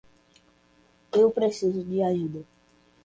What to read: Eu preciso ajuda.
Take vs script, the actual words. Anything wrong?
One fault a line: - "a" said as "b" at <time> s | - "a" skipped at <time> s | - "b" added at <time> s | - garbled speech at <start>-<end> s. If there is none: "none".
- "de" added at 1.8 s